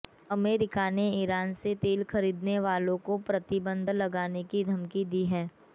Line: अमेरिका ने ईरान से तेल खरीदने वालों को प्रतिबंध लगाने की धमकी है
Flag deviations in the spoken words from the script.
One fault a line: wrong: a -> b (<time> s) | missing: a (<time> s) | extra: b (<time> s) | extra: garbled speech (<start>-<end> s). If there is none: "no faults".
extra: दी (5.1 s)